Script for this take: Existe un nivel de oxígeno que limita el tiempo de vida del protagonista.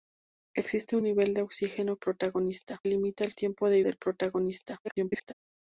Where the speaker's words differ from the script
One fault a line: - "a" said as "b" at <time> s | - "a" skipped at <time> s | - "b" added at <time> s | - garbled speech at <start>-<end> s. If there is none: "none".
- "que" said as "protagonista" at 2.0 s
- "vida" skipped at 3.8 s
- garbled speech at 4.8-5.3 s